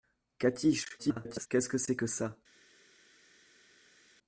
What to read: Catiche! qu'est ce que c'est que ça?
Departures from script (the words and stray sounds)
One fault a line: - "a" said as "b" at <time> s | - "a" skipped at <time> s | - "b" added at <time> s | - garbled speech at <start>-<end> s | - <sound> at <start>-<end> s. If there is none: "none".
- garbled speech at 1.0-1.5 s